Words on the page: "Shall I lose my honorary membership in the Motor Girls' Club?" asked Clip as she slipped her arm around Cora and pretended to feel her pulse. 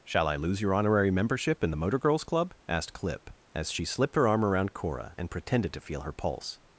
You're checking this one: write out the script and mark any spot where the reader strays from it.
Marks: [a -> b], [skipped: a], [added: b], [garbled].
"Shall I lose [my -> your] honorary membership in the Motor Girls' Club?" asked Clip as she slipped her arm around Cora and pretended to feel her pulse.